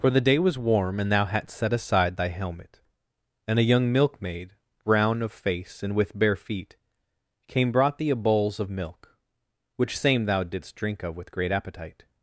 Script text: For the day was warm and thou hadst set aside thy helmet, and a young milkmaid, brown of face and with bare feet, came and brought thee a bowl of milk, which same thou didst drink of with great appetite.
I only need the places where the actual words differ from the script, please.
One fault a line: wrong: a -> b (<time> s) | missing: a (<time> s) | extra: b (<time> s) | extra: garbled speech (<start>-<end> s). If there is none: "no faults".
missing: and (7.7 s)
wrong: bowl -> bowls (8.2 s)